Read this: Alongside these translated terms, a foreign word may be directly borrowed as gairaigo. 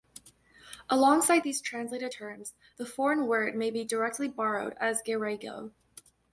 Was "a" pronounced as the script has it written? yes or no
no